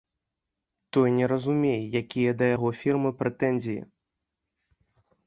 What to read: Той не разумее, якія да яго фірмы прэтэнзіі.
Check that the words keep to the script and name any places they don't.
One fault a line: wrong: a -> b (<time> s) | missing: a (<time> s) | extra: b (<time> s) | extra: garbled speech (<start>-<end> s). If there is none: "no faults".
no faults